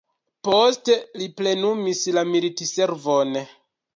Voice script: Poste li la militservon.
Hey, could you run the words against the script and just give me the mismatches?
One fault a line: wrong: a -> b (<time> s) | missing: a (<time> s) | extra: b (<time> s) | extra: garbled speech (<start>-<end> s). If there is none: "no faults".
extra: plenumis (1.4 s)